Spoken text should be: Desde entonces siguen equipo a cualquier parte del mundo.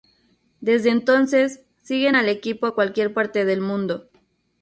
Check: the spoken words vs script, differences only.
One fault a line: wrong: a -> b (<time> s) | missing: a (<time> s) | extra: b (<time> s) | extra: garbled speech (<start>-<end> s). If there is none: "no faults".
extra: al (2.1 s)